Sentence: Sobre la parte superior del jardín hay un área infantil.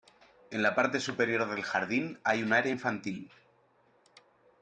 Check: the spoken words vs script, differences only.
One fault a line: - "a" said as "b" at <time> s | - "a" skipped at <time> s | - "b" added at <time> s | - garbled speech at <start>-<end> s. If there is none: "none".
- "Sobre" said as "En" at 0.5 s